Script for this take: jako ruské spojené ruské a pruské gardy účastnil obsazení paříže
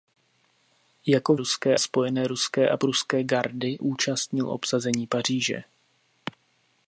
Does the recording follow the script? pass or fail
pass